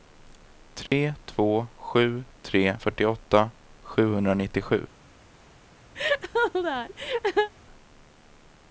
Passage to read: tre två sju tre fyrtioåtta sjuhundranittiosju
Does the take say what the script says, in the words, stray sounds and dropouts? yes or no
no